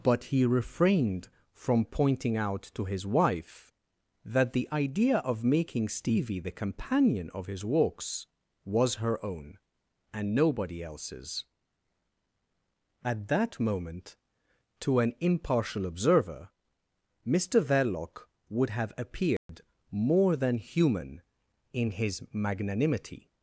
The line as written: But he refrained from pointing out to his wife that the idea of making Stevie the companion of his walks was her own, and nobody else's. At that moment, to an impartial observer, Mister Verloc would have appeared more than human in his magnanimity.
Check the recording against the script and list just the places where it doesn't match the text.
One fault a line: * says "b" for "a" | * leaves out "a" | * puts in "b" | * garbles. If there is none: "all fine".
all fine